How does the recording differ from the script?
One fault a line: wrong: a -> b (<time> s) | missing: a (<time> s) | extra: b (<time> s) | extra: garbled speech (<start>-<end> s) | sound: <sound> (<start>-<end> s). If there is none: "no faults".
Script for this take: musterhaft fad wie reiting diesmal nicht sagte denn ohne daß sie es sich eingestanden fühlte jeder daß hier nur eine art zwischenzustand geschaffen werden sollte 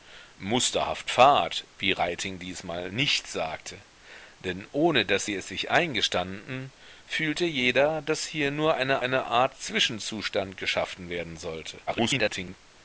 extra: eine (9.0 s)
extra: garbled speech (11.9-12.6 s)